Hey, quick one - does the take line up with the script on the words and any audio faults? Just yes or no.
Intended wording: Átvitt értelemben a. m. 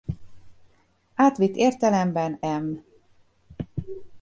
no